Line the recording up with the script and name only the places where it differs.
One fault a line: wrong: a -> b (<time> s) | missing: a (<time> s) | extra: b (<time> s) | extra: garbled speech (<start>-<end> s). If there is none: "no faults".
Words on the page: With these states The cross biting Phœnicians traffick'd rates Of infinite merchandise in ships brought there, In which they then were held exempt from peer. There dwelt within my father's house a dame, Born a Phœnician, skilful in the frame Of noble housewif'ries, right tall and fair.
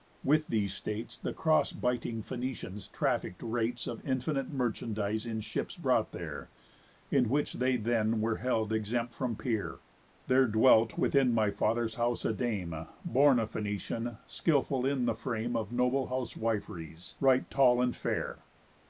no faults